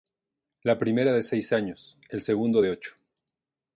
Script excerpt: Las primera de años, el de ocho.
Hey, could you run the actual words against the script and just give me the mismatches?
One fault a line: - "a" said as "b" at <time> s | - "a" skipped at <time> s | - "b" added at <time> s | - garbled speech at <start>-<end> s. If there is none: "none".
- "Las" said as "La" at 0.6 s
- "seis" added at 1.2 s
- "segundo" added at 2.2 s